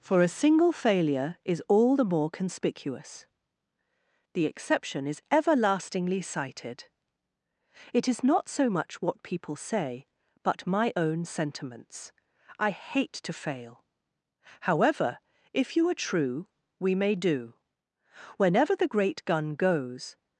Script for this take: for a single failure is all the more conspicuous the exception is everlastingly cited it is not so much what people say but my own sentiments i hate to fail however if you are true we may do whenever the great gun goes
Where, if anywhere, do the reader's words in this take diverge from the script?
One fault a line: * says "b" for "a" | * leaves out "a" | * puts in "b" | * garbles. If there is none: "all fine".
all fine